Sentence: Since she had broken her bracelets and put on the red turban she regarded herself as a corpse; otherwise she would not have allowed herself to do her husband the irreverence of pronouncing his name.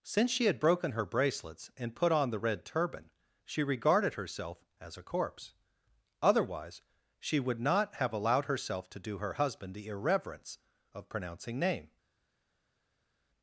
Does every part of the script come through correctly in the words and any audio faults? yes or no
no